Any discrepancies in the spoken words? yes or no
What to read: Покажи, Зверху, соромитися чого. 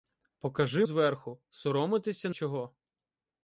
no